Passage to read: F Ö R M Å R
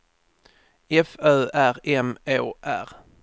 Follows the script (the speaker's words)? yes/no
yes